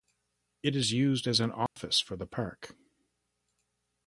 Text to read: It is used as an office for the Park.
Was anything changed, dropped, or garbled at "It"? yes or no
no